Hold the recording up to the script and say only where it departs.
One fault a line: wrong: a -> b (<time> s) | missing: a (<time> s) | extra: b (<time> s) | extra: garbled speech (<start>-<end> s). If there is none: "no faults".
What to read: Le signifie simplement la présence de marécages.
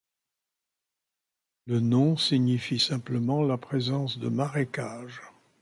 extra: nom (1.8 s)